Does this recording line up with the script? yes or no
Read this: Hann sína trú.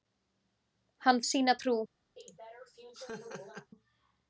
yes